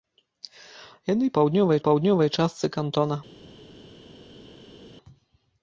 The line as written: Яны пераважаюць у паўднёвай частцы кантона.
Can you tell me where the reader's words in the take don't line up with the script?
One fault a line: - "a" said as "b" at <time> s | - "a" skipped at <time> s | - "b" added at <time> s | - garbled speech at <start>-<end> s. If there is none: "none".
- "пераважаюць" said as "паўднёвай" at 1.4 s